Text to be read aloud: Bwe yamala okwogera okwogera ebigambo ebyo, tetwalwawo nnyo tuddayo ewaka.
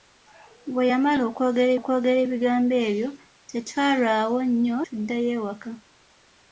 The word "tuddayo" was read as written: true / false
true